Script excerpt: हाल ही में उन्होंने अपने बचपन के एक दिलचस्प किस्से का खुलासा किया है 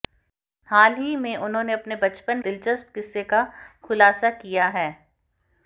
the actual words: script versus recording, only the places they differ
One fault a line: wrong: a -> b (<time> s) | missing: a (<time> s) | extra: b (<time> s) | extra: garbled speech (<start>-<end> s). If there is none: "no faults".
missing: के एक (2.4 s)